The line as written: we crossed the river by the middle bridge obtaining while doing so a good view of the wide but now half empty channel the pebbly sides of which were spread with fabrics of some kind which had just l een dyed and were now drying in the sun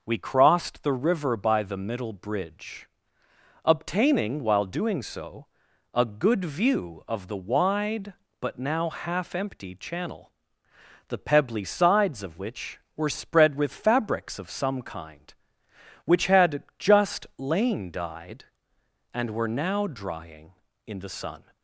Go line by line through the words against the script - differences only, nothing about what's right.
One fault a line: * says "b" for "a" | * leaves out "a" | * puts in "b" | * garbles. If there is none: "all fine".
* says "lain" for "l een"